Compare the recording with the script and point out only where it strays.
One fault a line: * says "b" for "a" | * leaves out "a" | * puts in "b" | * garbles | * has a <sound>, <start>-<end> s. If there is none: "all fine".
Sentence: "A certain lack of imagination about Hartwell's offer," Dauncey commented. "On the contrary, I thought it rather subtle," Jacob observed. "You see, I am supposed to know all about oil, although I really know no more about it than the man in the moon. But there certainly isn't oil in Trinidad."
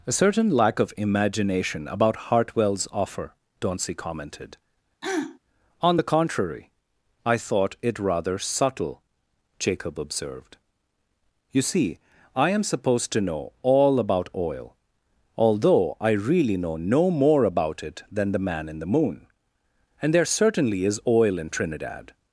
* has a throat clearing, 5.0-5.4 s
* says "And" for "But"
* says "is" for "isn't"